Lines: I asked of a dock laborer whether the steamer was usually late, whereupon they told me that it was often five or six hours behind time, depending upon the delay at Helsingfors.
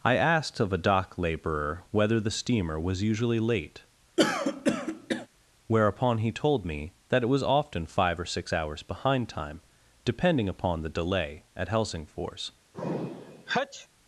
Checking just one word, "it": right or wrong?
right